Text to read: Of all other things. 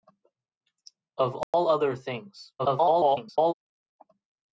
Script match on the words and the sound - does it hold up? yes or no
no